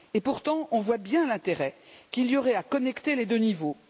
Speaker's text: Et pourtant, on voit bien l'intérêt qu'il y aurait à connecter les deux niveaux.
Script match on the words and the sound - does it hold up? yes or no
yes